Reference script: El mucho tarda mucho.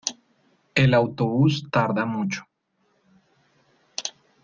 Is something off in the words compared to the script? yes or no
yes